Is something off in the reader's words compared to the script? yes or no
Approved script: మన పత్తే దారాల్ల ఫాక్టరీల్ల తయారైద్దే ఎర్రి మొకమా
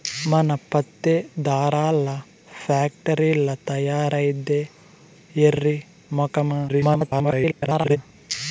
yes